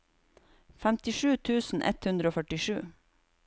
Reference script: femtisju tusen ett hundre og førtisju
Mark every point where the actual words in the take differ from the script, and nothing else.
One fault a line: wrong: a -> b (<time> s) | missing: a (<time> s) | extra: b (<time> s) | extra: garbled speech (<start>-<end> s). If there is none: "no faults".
no faults